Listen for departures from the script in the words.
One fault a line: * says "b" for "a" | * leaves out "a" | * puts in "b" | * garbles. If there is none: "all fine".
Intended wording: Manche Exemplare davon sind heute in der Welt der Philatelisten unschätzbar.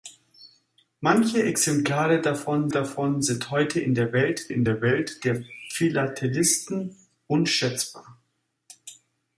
* puts in "davon"
* puts in "in der Welt"